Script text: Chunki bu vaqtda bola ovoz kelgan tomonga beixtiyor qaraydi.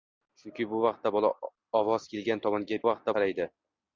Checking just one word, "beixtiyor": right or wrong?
wrong